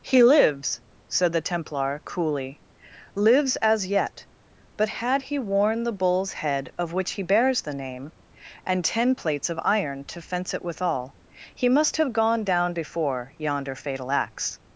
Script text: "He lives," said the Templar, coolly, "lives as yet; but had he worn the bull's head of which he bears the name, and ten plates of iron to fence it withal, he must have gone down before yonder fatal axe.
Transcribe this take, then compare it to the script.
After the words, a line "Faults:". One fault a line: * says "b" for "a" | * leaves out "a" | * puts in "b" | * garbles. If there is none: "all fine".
"He lives," said the Templar, coolly, "lives as yet; but had he worn the bull's head of which he bears the name, and ten plates of iron to fence it withal, he must have gone down before yonder fatal axe.
Faults:
all fine